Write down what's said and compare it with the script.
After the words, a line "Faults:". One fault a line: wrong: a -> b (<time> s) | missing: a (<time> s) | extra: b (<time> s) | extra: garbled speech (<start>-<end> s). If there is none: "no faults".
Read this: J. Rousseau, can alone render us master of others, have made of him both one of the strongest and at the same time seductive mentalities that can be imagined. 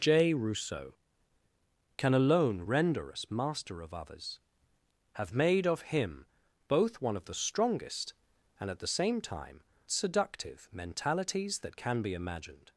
J. Rousseau, can alone render us master of others, have made of him both one of the strongest and at the same time seductive mentalities that can be imagined.
Faults:
no faults